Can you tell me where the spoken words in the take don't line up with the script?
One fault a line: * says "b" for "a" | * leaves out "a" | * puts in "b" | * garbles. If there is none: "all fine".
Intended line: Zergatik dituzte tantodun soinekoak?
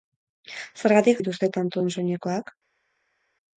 all fine